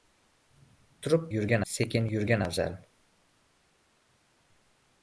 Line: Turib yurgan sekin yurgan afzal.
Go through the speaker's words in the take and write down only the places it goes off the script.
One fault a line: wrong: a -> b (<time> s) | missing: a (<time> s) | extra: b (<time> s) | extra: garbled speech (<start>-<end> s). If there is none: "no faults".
no faults